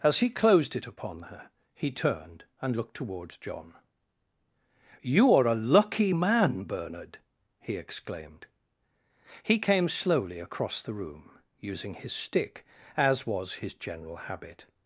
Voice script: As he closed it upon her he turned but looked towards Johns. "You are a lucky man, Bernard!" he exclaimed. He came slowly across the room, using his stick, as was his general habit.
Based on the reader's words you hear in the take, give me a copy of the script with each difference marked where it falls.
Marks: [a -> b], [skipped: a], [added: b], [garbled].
As he closed it upon her he turned [but -> and] looked towards [Johns. -> John] "You are a lucky man, Bernard!" he exclaimed. He came slowly across the room, using his stick, as was his general habit.